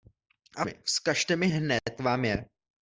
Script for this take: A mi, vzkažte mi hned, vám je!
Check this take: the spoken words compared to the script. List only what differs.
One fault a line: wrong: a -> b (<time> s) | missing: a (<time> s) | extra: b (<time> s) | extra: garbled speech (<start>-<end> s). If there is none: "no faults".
no faults